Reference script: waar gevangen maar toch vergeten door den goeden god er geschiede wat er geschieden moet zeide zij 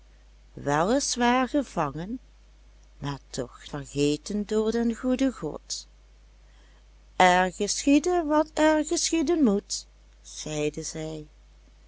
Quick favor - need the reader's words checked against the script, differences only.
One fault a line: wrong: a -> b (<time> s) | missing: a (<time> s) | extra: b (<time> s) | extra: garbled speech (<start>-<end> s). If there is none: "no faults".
no faults